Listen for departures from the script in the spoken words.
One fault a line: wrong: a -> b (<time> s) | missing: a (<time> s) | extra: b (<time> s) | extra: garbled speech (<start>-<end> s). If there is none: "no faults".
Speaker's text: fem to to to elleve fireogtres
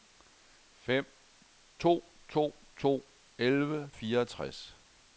no faults